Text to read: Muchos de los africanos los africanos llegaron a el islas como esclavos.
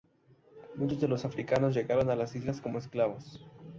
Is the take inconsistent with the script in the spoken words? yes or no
yes